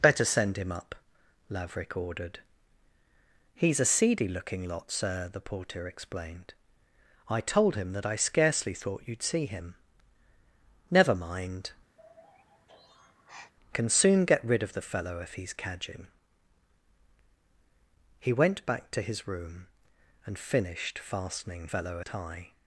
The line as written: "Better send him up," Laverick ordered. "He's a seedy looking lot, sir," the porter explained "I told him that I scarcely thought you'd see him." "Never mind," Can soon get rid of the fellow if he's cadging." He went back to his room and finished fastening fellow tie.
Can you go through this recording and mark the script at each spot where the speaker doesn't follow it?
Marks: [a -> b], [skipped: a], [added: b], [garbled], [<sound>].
"Better send him up," Laverick ordered. "He's a seedy looking lot, sir," the porter explained "I told him that I scarcely thought you'd see him." "Never mind," [sigh] Can soon get rid of the fellow if he's cadging." He went back to his room and finished fastening fellow tie.